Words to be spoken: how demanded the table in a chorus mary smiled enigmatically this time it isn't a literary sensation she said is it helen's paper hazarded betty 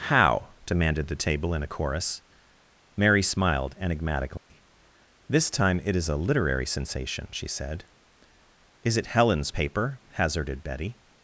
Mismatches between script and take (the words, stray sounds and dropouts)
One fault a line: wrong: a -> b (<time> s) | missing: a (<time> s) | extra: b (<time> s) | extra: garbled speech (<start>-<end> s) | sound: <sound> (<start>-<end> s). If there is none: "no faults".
sound: dropout (4.4-4.5 s)
wrong: isn't -> is (6.0 s)